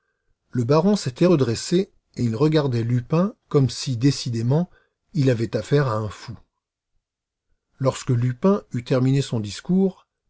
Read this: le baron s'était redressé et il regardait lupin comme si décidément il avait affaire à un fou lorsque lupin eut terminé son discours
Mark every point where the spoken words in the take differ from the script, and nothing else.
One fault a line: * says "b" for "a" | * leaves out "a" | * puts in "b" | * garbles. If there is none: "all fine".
all fine